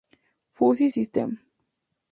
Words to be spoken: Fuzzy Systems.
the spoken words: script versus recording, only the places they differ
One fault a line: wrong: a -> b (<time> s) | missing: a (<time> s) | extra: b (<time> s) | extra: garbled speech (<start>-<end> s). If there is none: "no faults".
no faults